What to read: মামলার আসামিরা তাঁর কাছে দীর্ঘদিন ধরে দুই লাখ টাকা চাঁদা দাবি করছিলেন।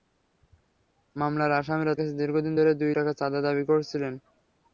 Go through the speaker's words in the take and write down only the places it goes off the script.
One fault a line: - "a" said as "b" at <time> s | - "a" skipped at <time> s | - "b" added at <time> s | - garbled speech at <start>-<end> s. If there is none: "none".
- "তাঁর" skipped at 1.9 s
- "লাখ" skipped at 2.9 s